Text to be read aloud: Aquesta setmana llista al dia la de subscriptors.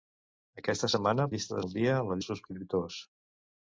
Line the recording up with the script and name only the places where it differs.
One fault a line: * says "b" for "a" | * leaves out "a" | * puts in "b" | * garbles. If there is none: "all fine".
all fine